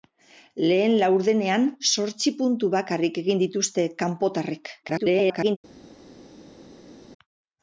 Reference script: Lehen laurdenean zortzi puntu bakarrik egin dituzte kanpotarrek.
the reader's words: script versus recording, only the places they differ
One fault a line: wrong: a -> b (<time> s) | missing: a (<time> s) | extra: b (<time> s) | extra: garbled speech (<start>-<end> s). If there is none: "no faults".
extra: garbled speech (4.8-5.6 s)